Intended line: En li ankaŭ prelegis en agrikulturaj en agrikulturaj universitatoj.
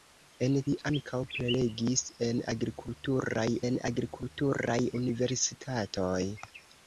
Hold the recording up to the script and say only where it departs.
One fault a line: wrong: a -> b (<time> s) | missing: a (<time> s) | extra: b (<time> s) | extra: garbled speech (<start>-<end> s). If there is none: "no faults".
no faults